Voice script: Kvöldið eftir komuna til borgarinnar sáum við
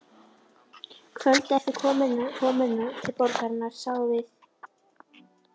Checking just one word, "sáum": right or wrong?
right